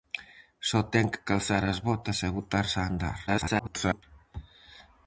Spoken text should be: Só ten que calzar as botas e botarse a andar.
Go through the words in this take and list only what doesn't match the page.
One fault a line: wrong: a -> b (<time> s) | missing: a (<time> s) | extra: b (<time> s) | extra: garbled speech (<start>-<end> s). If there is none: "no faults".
extra: garbled speech (3.3-4.0 s)